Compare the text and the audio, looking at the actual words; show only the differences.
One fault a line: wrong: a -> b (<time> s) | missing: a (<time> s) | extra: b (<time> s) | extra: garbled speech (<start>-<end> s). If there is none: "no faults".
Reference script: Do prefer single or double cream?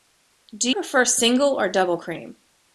no faults